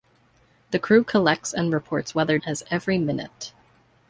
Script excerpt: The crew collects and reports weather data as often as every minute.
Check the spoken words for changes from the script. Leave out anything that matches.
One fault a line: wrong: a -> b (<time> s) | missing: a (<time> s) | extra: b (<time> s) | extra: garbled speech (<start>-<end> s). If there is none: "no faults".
missing: data as often (2.4 s)